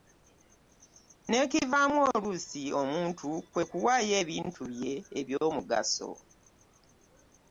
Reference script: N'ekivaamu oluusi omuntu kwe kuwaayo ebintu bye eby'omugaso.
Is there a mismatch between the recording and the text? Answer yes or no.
no